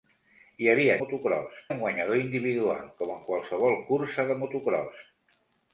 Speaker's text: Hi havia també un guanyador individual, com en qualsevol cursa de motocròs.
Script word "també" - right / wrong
wrong